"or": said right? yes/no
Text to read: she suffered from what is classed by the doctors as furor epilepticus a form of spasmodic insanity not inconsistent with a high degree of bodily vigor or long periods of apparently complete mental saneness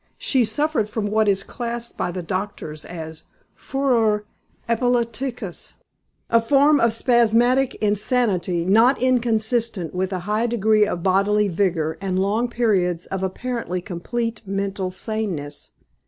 no